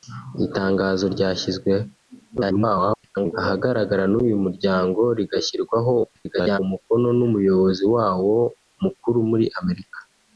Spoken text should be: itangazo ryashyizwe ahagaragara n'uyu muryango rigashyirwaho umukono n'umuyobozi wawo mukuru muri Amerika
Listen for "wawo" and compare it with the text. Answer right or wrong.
right